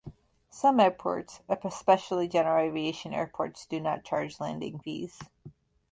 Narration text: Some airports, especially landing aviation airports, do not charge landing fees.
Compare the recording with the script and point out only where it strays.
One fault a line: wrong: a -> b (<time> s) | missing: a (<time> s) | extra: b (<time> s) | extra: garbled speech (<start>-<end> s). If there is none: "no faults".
wrong: landing -> general (2.3 s)